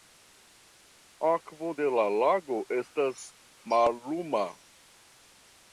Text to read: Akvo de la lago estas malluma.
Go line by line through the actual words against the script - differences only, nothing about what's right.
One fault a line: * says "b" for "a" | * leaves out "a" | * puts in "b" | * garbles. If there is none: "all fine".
all fine